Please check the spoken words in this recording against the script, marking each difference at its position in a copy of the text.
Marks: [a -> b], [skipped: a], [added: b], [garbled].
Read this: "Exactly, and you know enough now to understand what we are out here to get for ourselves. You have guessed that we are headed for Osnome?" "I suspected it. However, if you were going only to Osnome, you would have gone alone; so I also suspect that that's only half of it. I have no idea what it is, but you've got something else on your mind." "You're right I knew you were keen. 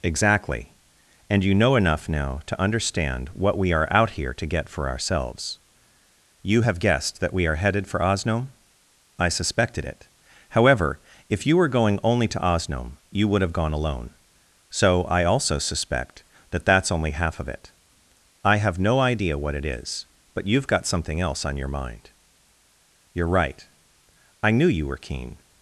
"Exactly, and you know enough now to understand what we are out here to get for ourselves. You have guessed that we are headed for Osnome?" "I suspected it. However, if you were going only to Osnome, you would have gone alone; so I also suspect that that's only half of it. I have no idea what it is, but you've got something else on your mind." "You're right I knew you were keen.